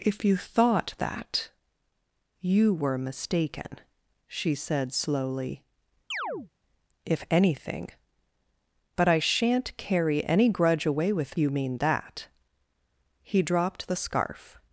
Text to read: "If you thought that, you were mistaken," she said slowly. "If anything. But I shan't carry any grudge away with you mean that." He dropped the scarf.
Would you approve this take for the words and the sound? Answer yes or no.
no